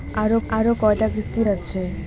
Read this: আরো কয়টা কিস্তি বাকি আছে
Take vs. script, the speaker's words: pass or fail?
fail